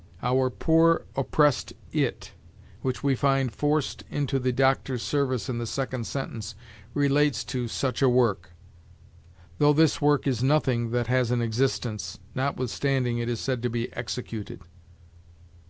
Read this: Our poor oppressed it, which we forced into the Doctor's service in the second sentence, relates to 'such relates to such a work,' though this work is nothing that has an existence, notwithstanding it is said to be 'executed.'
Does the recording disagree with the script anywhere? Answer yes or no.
yes